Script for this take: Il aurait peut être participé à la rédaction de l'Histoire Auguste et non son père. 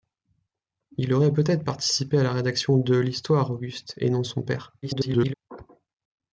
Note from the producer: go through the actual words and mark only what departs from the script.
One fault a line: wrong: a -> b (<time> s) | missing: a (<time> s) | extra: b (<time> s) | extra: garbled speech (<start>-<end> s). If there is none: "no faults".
extra: garbled speech (4.8-5.3 s)